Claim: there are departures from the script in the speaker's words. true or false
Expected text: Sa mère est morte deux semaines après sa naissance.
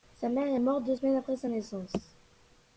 false